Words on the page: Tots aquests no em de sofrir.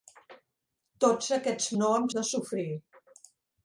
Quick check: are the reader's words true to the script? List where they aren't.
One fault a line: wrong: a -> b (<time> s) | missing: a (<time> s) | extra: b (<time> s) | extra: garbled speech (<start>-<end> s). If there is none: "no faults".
no faults